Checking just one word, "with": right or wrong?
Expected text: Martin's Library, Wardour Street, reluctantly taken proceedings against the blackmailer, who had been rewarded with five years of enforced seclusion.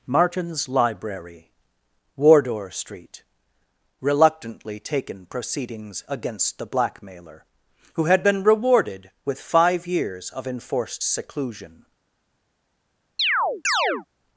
right